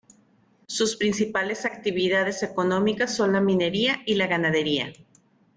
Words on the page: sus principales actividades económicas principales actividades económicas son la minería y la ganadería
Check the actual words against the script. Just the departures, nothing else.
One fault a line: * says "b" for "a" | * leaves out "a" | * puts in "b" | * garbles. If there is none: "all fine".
* leaves out "principales actividades económicas"